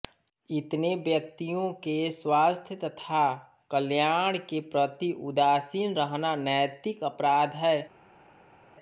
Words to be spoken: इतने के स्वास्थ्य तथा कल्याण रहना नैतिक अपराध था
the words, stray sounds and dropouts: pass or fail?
fail